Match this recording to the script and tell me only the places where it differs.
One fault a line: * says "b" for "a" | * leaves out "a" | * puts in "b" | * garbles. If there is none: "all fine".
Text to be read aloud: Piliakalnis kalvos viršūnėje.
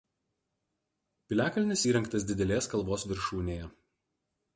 * puts in "įrengtas didelės"